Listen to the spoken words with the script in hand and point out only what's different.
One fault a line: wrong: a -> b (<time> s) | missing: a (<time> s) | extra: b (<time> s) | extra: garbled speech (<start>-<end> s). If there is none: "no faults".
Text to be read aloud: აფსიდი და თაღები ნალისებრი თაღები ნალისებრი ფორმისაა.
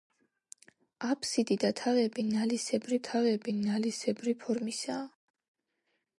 no faults